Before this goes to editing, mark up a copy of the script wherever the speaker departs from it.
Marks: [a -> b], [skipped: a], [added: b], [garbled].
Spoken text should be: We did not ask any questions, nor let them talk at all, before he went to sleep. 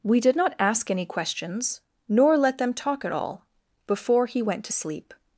We did not ask any questions, nor let them talk at all, before he went to sleep.